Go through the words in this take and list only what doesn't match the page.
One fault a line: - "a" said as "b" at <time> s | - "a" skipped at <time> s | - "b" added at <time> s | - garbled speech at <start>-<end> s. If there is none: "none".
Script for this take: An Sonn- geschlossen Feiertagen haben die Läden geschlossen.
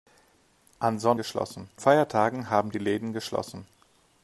none